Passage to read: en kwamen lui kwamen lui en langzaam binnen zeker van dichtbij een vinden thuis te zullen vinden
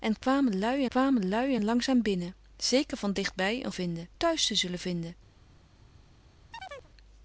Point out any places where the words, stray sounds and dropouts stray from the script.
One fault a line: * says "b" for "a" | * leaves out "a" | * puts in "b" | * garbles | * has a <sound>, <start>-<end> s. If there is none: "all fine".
* has a chirp, 6.5-6.9 s